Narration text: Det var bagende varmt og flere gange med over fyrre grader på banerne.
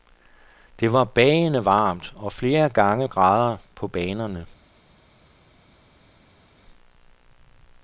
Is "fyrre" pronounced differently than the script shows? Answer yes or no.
yes